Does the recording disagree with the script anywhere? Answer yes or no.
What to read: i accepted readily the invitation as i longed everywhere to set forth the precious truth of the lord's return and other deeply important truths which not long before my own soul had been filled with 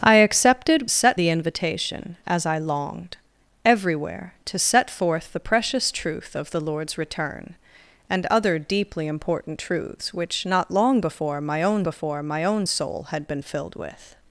yes